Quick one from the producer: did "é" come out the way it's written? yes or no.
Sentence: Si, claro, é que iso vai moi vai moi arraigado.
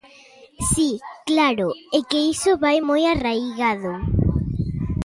yes